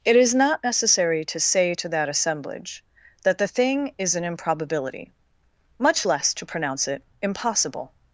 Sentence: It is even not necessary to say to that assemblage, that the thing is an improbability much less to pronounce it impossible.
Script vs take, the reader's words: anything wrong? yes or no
yes